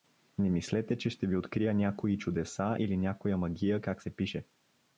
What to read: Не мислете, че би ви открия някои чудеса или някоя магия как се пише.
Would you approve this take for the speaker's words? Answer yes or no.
no